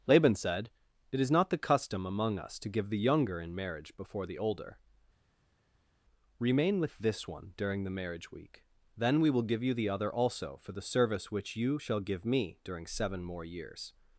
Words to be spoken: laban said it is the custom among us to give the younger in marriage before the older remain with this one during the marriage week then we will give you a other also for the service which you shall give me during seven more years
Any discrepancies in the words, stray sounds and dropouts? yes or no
yes